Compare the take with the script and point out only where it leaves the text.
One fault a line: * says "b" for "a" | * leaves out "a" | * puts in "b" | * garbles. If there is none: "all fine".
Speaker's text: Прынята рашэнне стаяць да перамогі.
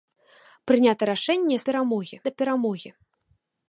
* says "перамогі" for "стаяць"